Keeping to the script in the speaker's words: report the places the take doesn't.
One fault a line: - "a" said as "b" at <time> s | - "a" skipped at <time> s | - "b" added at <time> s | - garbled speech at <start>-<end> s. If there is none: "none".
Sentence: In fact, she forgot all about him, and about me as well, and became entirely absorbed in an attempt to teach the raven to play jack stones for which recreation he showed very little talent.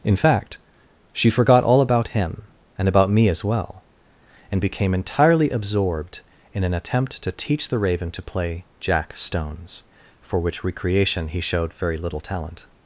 none